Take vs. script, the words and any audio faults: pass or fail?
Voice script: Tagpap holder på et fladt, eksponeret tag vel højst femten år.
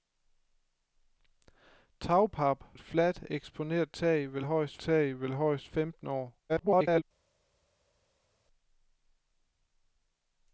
fail